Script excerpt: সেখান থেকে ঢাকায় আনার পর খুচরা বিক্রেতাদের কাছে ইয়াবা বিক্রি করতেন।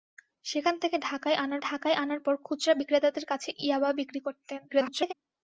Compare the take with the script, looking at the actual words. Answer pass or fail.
fail